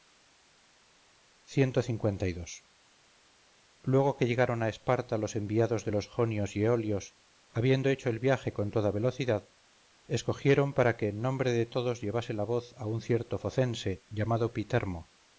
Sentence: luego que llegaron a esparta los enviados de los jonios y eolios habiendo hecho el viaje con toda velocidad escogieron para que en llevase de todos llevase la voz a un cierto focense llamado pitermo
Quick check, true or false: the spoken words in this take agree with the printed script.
false